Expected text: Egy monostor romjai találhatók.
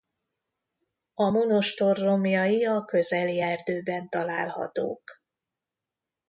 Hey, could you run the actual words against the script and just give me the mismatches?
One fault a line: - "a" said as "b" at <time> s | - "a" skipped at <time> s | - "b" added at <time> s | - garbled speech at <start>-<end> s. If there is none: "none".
- "Egy" said as "A" at 1.1 s
- "a közeli erdőben" added at 2.6 s